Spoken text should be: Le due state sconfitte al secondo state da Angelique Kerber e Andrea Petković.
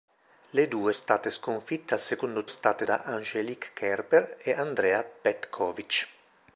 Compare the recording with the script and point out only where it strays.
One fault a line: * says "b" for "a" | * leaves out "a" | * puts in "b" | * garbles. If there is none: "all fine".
all fine